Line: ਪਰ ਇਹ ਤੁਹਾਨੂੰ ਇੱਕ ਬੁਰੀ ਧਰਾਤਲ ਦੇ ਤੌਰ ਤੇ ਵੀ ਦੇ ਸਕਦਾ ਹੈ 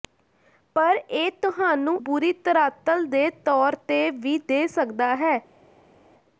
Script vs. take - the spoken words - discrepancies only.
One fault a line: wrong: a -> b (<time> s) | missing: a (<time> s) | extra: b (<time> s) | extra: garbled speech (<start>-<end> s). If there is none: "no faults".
missing: ਇੱਕ (2.0 s)